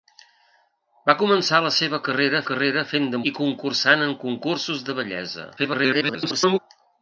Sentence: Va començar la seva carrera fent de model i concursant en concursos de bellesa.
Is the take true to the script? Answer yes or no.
no